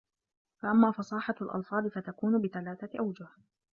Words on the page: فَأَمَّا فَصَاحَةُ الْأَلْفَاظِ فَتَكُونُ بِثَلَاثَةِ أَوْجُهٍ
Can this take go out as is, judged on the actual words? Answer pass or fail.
pass